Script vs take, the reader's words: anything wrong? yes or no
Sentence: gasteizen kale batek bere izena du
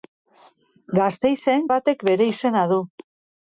yes